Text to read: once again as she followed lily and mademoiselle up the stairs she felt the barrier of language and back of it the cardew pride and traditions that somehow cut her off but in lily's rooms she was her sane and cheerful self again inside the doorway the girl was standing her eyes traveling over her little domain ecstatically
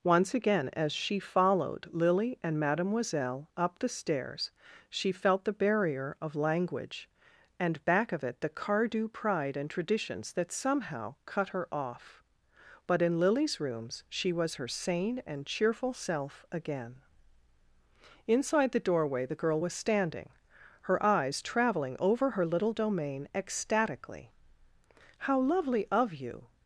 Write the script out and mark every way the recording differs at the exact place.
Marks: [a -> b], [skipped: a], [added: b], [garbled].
once again as she followed lily and mademoiselle up the stairs she felt the barrier of language and back of it the cardew pride and traditions that somehow cut her off but in lily's rooms she was her sane and cheerful self again inside the doorway the girl was standing her eyes traveling over her little domain ecstatically [added: how lovely of you]